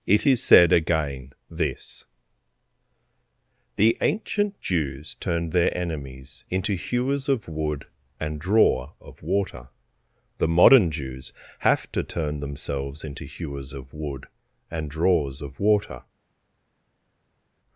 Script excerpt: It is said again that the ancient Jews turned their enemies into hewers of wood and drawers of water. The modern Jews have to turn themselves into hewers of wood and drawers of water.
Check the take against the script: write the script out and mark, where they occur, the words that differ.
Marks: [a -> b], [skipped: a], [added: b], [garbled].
It is said again [that -> this] the ancient Jews turned their enemies into hewers of wood and [drawers -> drawer] of water. The modern Jews have to turn themselves into hewers of wood and drawers of water.